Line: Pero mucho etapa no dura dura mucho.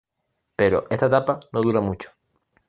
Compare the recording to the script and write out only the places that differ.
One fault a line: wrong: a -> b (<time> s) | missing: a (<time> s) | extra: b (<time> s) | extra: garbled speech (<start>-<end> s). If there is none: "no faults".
wrong: mucho -> esta (0.9 s)
missing: dura (1.8 s)